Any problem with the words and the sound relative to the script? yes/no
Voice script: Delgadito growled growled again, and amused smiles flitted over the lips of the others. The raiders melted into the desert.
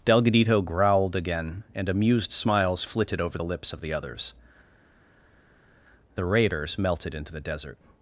yes